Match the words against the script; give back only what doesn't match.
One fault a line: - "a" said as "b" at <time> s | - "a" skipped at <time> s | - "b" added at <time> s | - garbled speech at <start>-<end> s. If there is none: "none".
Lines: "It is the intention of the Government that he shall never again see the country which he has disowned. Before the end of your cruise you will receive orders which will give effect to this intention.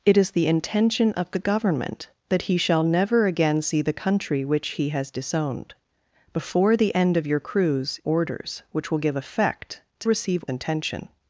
- "you will receive" skipped at 8.0 s
- "this" said as "receive" at 10.0 s